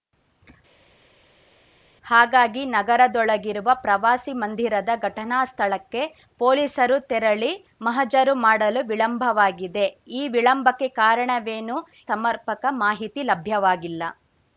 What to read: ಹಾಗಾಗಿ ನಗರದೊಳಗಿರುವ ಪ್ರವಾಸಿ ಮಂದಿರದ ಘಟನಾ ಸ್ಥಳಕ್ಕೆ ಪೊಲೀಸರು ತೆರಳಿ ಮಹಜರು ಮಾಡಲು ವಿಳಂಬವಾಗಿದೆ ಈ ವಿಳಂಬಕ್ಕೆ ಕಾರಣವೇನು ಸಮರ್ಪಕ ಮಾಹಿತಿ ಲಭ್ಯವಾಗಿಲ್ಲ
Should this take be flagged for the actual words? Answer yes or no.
no